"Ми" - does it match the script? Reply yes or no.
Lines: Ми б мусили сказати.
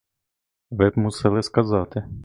no